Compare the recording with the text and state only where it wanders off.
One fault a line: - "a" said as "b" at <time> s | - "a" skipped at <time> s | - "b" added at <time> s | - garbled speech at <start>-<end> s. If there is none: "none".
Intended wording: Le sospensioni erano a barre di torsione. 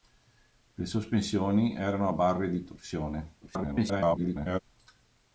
- garbled speech at 3.4-4.6 s